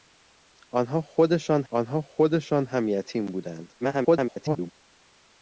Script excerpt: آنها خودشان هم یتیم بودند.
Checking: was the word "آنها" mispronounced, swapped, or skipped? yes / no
no